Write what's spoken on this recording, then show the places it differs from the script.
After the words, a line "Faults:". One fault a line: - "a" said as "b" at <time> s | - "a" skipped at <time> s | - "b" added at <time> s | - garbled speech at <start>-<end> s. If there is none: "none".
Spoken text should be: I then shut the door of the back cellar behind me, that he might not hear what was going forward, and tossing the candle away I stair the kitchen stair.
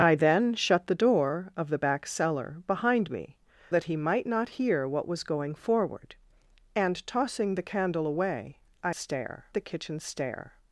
I then shut the door of the back cellar behind me, that he might not hear what was going forward, and tossing the candle away I stair the kitchen stair.
Faults:
none